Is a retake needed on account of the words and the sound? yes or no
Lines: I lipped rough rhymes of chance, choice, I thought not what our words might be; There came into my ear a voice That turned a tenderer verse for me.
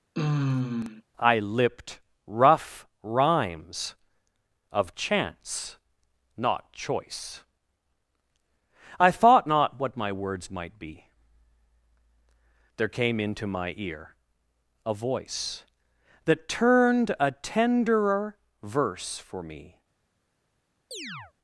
yes